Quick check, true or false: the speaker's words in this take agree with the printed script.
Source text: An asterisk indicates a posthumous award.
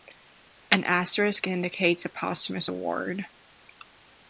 true